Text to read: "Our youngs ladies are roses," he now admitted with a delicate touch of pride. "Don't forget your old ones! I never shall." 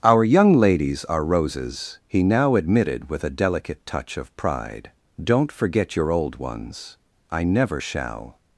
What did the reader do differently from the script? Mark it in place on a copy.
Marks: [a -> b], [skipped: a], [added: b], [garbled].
"Our [youngs -> young] ladies are roses," he now admitted with a delicate touch of pride. "Don't forget your old ones! I never shall."